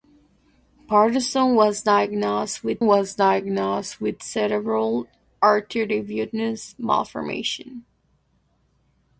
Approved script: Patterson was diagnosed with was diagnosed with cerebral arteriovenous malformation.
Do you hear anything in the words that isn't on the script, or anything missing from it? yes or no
no